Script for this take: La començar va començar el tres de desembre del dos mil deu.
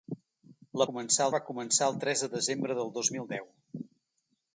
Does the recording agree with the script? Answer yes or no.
yes